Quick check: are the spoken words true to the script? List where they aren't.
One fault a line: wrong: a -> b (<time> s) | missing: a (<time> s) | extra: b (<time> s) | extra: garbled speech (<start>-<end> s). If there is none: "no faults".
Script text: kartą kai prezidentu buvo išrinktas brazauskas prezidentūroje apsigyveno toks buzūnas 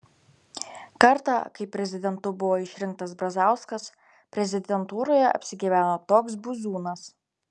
no faults